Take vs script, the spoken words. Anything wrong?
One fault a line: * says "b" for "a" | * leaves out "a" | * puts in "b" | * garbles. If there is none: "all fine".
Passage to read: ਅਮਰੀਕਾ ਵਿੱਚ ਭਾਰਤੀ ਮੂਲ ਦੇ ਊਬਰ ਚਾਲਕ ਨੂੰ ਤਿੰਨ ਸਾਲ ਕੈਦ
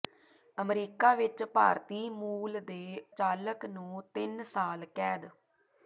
* leaves out "ਊਬਰ"